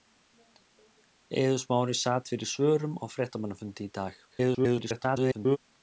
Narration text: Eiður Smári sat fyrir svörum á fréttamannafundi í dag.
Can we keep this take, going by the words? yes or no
no